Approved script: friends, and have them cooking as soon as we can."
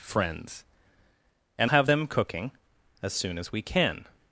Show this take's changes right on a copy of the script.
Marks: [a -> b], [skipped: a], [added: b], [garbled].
friends, and have them cooking as soon as we can."